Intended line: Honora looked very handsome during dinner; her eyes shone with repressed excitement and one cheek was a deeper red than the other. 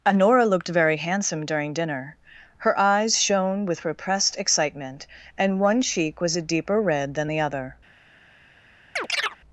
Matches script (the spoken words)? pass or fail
pass